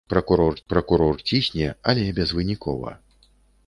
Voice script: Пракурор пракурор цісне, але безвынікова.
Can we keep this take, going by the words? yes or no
yes